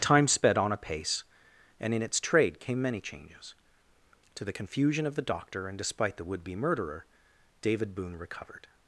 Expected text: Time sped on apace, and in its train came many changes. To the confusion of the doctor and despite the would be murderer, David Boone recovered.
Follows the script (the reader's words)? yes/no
no